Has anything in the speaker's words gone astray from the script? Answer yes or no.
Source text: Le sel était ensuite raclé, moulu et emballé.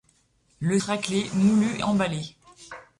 yes